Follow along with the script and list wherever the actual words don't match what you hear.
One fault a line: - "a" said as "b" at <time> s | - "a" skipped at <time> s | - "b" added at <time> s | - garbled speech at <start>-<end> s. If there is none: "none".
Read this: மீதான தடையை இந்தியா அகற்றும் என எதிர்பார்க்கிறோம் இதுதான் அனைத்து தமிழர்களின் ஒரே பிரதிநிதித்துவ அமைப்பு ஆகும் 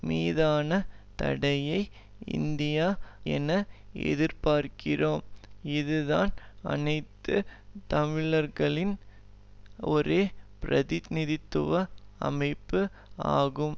- "அகற்றும்" skipped at 2.9 s